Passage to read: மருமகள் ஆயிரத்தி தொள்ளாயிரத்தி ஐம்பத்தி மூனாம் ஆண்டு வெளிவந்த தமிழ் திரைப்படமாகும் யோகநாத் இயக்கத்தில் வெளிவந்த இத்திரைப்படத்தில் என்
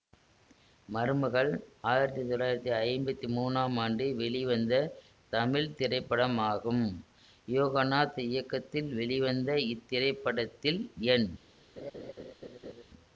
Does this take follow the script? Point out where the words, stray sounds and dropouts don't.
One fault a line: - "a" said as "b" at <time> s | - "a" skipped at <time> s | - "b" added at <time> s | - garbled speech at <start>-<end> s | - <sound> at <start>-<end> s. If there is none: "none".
- laugh at 11.8-12.8 s